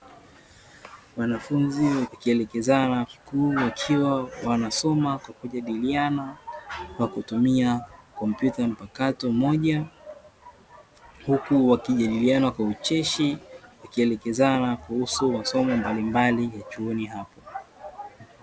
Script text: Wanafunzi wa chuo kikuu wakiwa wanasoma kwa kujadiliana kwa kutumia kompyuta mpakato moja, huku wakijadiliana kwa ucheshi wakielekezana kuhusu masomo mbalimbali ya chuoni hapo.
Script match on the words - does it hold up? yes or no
no